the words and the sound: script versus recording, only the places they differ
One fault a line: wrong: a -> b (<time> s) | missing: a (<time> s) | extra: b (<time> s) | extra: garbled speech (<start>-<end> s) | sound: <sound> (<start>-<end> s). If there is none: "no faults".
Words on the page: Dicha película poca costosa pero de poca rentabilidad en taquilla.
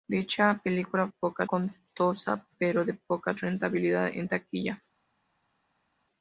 no faults